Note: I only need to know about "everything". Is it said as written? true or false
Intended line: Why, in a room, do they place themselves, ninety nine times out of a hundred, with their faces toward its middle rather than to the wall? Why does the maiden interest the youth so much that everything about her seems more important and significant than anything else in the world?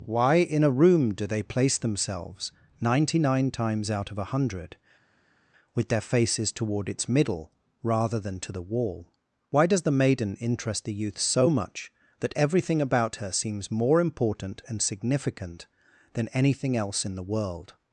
true